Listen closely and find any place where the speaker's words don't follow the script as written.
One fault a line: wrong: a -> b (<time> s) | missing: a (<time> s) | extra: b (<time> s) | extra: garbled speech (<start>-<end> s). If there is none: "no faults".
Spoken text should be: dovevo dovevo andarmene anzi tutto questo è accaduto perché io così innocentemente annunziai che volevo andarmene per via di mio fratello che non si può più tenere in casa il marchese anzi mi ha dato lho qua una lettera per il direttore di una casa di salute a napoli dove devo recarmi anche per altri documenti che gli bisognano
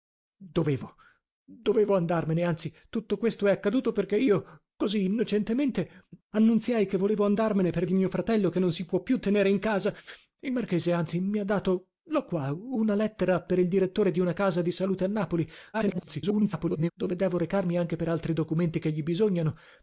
missing: via (7.8 s)
extra: garbled speech (15.7-16.9 s)